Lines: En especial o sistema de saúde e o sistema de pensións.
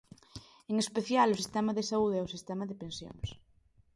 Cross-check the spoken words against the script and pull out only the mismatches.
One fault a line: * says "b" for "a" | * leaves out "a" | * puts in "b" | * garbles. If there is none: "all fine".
all fine